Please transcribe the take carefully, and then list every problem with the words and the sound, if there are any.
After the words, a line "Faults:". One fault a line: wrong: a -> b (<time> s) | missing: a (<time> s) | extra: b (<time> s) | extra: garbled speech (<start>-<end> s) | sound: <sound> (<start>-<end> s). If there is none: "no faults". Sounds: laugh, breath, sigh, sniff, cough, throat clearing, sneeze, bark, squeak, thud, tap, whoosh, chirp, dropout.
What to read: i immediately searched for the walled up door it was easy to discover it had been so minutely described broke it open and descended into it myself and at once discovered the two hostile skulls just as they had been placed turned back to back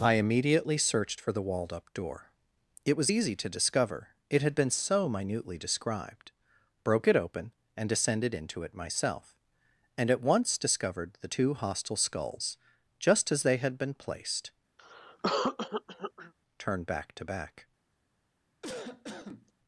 i immediately searched for the walled up door it was easy to discover it had been so minutely described broke it open and descended into it myself and at once discovered the two hostile skulls just as they had been placed turned back to back
Faults:
sound: cough (14.8-16.3 s)
sound: cough (18.6-19.5 s)